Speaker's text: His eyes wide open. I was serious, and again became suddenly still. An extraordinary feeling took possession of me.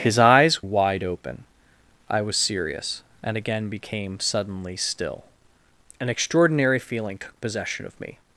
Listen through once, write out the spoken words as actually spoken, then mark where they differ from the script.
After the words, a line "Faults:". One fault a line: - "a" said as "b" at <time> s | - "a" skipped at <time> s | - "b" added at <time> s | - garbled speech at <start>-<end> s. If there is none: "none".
His eyes wide open. I was serious, and again became suddenly still. An extraordinary feeling took possession of me.
Faults:
none